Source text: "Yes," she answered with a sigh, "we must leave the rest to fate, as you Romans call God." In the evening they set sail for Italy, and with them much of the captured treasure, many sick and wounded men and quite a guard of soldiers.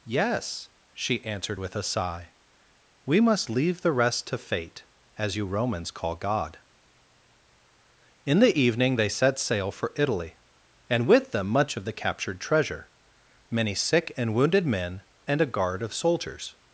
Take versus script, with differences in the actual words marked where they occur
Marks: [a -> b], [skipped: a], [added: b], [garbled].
"Yes," she answered with a sigh, "we must leave the rest to fate, as you Romans call God." In the evening they set sail for Italy, and with them much of the captured treasure, many sick and wounded men and [skipped: quite] a guard of soldiers.